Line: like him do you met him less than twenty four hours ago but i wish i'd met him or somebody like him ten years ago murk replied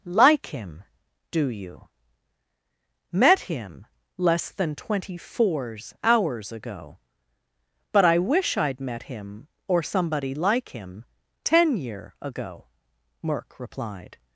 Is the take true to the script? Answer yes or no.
no